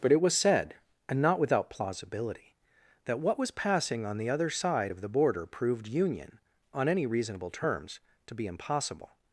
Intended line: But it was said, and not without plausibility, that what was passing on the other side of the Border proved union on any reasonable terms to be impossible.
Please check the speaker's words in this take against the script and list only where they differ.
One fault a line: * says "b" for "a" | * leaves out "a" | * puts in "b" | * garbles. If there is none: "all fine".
all fine